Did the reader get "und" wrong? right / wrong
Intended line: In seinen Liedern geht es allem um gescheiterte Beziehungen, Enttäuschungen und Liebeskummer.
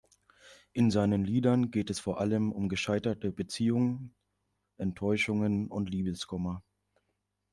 right